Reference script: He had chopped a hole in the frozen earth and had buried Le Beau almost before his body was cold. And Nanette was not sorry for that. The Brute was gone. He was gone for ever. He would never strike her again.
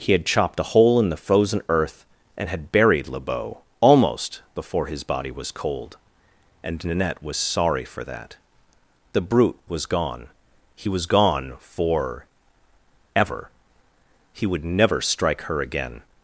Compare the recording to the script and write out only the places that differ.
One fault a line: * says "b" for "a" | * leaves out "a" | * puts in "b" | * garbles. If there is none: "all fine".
* leaves out "not"